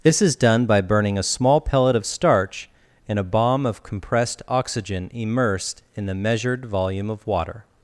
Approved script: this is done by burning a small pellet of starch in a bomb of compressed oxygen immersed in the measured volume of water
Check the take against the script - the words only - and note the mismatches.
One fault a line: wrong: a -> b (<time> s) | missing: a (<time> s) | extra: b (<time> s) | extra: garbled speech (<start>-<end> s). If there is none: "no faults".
no faults